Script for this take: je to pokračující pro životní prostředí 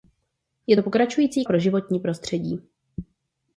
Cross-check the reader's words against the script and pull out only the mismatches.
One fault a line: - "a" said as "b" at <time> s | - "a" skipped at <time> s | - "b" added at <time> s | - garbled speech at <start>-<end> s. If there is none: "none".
none